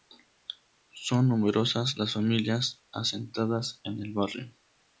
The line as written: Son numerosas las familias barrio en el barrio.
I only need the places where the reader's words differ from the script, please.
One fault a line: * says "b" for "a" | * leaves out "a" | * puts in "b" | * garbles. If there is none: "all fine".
* says "asentadas" for "barrio"